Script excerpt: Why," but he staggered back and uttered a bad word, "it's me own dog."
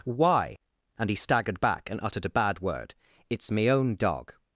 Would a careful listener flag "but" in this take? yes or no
yes